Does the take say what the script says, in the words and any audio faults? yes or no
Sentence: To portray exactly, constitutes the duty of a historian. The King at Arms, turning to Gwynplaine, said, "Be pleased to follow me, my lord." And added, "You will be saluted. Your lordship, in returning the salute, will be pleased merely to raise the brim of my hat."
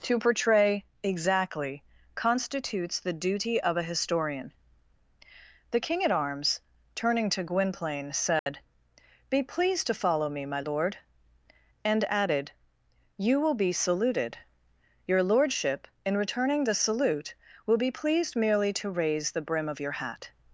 no